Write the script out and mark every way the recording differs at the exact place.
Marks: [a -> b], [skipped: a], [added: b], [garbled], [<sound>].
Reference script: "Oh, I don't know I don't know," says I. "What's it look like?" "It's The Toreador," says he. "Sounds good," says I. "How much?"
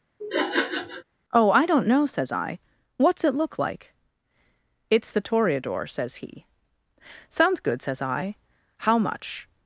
[sniff] "Oh, I don't know [skipped: I don't know,"] says I. "What's it look like?" "It's The Toreador," says he. "Sounds good," says I. "How much?"